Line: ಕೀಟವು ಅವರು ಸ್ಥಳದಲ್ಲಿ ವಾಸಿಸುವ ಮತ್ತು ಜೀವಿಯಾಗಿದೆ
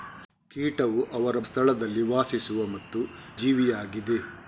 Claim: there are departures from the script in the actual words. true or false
false